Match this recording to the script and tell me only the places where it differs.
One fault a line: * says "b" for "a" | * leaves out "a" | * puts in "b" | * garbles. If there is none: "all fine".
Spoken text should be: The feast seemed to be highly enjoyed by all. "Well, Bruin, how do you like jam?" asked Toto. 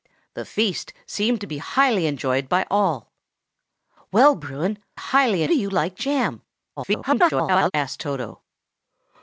* says "highly" for "how"
* garbles